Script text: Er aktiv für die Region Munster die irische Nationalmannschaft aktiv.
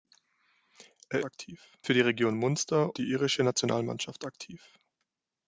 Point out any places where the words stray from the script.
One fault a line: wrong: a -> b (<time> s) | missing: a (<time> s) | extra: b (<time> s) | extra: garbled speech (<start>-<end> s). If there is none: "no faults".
no faults